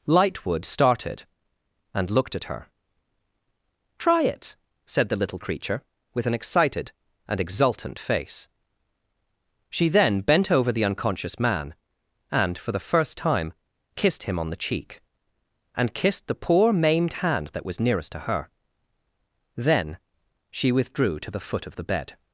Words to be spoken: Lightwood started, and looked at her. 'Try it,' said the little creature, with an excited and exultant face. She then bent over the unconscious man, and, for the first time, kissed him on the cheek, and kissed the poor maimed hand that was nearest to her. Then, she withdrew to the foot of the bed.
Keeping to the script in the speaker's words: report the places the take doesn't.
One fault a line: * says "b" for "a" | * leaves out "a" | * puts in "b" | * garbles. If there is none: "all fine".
all fine